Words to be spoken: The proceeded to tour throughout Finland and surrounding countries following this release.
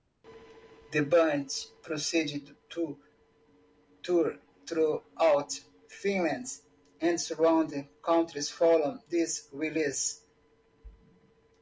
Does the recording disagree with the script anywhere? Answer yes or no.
yes